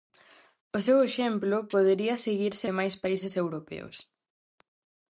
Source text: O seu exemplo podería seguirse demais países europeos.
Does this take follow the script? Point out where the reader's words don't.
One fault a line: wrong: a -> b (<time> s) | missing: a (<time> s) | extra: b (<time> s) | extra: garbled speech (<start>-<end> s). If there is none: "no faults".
no faults